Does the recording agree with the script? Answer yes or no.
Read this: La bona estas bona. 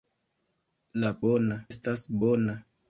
yes